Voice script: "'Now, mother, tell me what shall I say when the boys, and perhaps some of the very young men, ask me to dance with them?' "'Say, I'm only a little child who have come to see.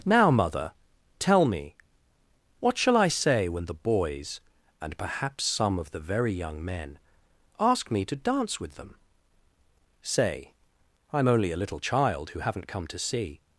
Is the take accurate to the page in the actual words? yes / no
no